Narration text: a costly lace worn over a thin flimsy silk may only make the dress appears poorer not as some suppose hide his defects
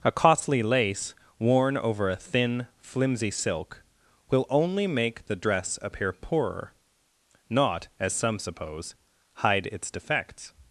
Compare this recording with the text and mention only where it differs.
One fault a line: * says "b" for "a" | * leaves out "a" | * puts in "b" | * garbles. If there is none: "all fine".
* says "will" for "may"
* says "appear" for "appears"
* says "its" for "his"